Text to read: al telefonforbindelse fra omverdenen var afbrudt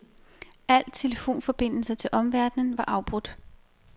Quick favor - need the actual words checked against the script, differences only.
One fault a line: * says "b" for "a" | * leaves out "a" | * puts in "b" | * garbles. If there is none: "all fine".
* says "til" for "fra"